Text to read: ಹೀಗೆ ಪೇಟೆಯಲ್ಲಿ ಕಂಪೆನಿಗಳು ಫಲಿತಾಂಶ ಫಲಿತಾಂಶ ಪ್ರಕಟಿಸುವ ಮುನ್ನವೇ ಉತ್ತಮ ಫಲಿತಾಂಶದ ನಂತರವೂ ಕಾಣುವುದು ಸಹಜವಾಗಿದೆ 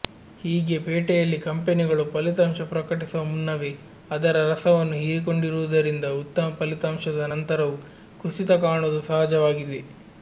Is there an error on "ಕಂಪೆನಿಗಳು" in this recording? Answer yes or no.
no